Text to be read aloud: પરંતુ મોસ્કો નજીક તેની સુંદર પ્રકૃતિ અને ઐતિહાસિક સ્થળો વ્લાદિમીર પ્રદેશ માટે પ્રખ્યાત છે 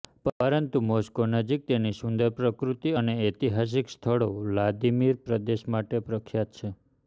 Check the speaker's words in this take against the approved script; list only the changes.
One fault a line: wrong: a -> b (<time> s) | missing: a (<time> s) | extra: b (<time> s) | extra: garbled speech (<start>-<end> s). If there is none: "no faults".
no faults